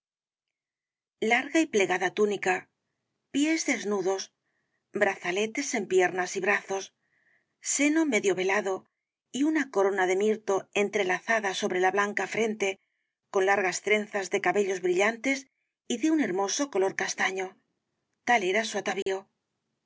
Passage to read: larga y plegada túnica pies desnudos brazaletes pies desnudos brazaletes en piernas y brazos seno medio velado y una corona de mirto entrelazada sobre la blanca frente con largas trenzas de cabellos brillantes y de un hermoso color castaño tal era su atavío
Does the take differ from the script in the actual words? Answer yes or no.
yes